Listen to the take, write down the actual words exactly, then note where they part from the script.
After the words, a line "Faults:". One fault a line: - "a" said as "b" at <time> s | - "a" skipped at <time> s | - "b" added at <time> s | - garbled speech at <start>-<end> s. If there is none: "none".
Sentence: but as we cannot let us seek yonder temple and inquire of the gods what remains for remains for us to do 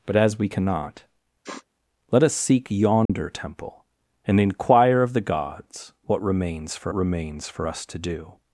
but as we cannot let us seek yonder temple and inquire of the gods what remains for remains for us to do
Faults:
none